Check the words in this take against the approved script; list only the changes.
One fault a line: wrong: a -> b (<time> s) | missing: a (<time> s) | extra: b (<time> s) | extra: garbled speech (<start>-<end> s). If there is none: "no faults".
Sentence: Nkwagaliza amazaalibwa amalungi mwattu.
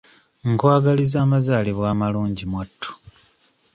no faults